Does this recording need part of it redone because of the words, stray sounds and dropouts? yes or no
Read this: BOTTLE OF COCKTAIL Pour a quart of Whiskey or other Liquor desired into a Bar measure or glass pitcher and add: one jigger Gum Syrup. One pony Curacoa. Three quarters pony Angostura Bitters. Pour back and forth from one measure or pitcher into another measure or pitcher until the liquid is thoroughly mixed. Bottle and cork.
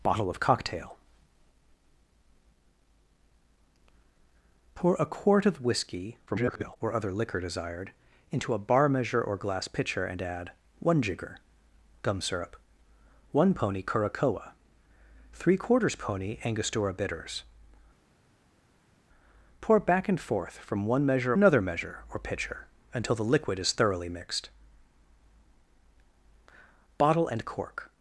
yes